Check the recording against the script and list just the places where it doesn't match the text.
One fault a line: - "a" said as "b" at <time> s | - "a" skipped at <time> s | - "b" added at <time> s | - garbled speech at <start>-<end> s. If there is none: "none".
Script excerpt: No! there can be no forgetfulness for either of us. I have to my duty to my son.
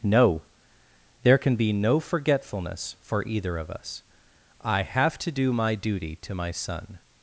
- "do" added at 5.3 s